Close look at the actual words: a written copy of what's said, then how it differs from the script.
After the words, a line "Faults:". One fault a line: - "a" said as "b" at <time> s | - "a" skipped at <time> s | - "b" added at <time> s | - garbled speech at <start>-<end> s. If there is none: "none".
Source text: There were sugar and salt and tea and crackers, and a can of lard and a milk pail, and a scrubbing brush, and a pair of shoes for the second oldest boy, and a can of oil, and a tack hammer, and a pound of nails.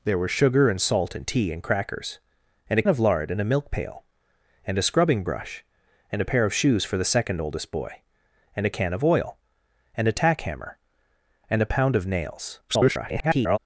There were sugar and salt and tea and crackers, and a of lard and a milk pail, and a scrubbing brush, and a pair of shoes for the second oldest boy, and a can of oil, and a tack hammer, and a pound of nails. [garbled]
Faults:
- "can" skipped at 2.8 s
- garbled speech at 12.7-13.6 s